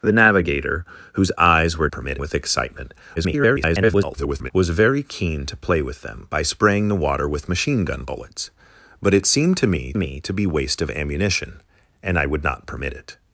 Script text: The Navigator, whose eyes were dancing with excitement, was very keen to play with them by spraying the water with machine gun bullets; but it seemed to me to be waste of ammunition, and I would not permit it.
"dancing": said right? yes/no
no